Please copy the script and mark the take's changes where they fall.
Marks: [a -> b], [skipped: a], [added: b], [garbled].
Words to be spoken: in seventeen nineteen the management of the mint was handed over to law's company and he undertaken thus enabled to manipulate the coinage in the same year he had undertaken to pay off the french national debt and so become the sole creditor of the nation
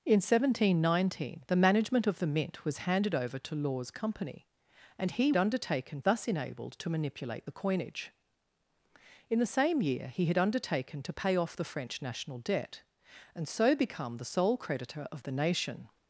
in seventeen nineteen the management of the mint was handed over to law's company and he undertaken thus enabled to manipulate the coinage in the same year he had undertaken to pay off the french national debt and so become the sole creditor of the nation